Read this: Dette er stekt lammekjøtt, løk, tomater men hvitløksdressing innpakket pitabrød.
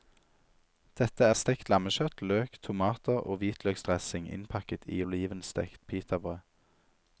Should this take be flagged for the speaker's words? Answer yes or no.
yes